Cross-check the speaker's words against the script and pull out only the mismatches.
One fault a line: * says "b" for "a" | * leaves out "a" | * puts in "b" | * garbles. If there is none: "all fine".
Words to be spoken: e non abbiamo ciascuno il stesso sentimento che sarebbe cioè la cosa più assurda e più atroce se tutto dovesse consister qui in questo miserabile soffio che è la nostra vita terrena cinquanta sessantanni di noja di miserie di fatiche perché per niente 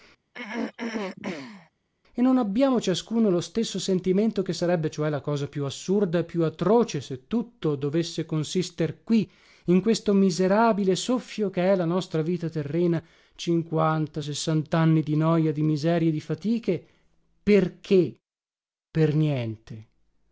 * says "lo" for "il"